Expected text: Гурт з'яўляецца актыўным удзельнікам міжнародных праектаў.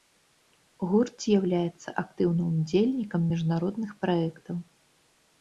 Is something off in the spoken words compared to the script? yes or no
no